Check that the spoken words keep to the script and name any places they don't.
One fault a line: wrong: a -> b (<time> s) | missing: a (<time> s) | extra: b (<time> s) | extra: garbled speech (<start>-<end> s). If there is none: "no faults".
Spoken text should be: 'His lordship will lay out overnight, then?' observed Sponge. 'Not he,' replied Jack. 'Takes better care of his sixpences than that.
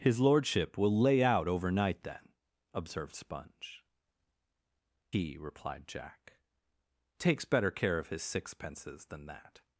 missing: Not (3.9 s)